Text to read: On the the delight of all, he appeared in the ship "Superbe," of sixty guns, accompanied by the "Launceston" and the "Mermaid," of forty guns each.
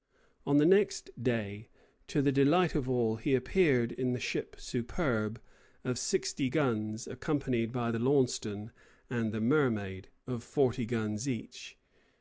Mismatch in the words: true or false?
true